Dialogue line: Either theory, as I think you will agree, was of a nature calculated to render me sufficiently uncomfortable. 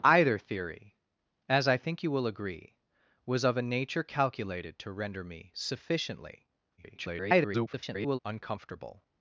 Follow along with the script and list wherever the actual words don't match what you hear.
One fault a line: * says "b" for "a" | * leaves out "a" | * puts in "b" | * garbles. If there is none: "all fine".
* garbles